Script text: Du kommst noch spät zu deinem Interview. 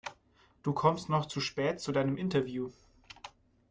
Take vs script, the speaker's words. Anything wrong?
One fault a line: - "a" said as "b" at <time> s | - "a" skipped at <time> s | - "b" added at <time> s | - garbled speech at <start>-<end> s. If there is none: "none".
- "zu" added at 1.2 s